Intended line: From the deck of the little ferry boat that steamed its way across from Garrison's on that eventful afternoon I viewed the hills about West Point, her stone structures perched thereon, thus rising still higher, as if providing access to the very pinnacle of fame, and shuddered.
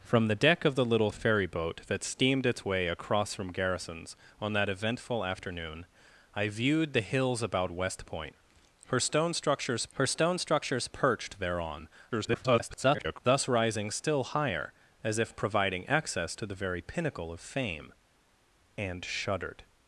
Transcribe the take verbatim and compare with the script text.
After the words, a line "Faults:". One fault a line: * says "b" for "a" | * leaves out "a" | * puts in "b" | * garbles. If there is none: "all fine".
From the deck of the little ferry boat that steamed its way across from Garrison's on that eventful afternoon I viewed the hills about West Point, her stone structures her stone structures perched thereon, [garbled] thus rising still higher, as if providing access to the very pinnacle of fame, and shuddered.
Faults:
* puts in "her stone structures"
* garbles